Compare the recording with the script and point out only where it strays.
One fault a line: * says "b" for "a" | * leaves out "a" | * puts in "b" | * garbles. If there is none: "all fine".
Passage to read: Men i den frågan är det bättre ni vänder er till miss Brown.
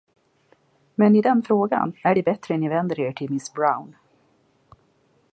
all fine